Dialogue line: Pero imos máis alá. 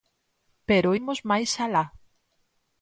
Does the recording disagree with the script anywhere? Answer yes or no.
no